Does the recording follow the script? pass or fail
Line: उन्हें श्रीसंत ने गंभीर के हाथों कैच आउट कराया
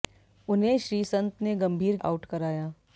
fail